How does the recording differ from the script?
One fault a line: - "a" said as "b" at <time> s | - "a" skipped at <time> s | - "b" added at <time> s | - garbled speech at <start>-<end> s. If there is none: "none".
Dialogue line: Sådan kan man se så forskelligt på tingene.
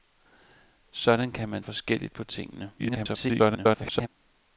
- "se så" skipped at 1.6 s
- garbled speech at 2.8-4.1 s